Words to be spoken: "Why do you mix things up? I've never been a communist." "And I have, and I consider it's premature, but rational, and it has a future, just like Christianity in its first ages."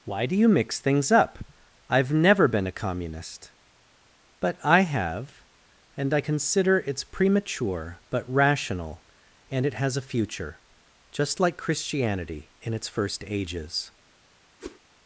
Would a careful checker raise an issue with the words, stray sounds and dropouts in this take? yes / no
yes